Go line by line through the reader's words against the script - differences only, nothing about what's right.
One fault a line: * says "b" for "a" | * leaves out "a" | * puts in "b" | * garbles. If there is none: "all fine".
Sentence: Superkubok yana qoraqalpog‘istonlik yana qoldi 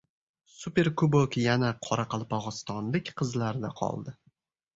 * says "qizlarda" for "yana"